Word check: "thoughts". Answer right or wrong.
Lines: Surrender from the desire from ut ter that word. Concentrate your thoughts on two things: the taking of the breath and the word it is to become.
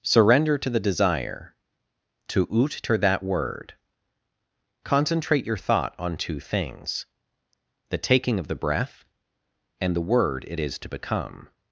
wrong